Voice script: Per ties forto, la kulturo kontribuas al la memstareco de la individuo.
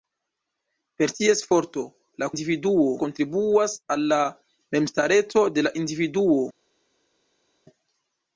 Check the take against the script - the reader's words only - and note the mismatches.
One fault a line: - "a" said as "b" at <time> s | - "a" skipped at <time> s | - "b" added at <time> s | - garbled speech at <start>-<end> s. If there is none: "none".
- "kulturo" said as "individuo" at 2.3 s